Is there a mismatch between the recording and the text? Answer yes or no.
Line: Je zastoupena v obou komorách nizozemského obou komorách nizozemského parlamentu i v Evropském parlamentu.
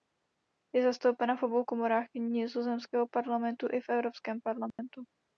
yes